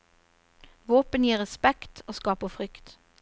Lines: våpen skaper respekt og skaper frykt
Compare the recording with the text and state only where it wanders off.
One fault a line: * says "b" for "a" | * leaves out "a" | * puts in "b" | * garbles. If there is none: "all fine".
* says "gir" for "skaper"